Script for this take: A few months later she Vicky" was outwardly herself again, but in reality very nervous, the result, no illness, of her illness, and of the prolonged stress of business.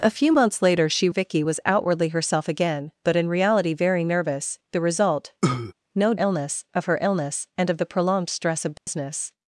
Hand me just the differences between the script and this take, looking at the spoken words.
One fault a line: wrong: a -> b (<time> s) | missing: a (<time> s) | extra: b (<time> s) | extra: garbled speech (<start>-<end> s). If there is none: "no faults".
no faults